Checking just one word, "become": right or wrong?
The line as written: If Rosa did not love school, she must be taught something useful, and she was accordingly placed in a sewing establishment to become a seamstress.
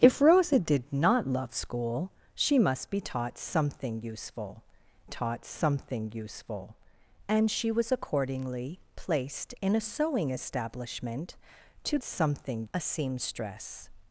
wrong